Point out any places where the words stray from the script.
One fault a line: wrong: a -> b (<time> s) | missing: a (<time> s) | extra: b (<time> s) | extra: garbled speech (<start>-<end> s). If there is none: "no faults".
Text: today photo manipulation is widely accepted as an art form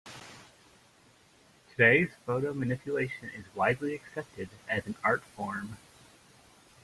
no faults